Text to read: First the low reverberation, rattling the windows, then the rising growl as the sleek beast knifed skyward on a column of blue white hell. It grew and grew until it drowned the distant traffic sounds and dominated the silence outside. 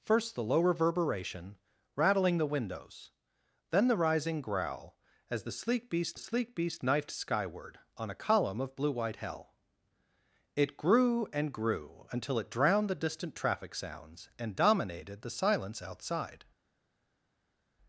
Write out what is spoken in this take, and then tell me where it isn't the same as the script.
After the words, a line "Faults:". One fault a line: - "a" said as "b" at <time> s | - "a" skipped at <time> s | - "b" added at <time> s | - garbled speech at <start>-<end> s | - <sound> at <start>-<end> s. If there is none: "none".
First the low reverberation, rattling the windows, then the rising growl as the sleek beast sleek beast knifed skyward on a column of blue white hell. It grew and grew until it drowned the distant traffic sounds and dominated the silence outside.
Faults:
- "sleek beast" added at 6.2 s